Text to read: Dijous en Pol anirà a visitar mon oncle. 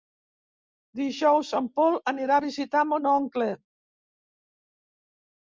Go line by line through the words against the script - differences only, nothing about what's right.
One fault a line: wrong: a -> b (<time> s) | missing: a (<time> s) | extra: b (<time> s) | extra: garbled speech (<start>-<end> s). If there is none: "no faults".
no faults